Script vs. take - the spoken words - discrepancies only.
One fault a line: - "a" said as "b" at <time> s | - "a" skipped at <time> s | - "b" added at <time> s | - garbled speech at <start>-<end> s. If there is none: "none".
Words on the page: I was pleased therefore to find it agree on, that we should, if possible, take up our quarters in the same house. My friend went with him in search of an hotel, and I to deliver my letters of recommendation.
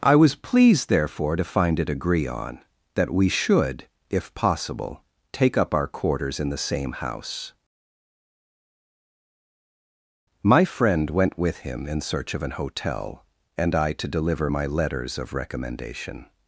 none